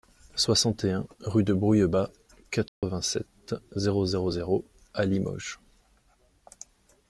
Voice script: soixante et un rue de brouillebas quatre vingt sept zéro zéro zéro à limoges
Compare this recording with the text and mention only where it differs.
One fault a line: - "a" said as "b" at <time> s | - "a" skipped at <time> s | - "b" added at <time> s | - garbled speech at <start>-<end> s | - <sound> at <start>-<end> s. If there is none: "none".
- dropout at 2.7-2.8 s